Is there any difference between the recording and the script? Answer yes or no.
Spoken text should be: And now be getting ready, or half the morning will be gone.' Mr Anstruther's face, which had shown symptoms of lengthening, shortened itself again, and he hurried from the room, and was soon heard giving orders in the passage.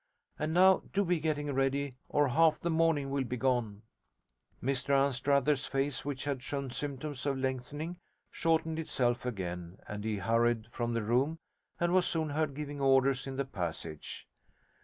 yes